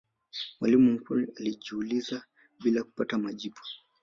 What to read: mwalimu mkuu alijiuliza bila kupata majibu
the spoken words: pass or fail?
pass